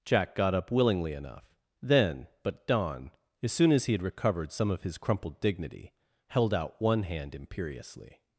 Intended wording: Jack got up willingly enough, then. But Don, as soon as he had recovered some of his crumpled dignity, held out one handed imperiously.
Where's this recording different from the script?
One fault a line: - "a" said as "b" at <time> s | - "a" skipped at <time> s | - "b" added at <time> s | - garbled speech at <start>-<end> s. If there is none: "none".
- "handed" said as "hand" at 7.0 s